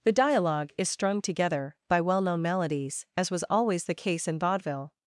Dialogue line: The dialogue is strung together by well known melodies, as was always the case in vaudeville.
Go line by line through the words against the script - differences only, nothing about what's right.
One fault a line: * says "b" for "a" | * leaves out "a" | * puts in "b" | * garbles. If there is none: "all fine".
all fine